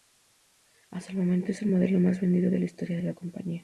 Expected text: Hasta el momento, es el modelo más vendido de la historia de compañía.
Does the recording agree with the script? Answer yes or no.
no